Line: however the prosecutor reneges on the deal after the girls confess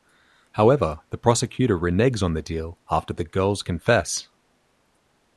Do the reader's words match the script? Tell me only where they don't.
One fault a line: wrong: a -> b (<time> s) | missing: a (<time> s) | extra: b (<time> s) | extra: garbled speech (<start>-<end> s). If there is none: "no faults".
no faults